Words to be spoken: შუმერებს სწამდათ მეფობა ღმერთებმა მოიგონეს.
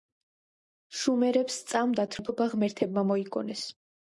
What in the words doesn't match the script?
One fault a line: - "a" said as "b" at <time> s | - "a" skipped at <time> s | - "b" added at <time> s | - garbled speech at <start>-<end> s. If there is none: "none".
none